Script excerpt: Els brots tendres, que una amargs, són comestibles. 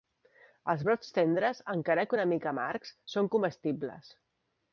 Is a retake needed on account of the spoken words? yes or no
yes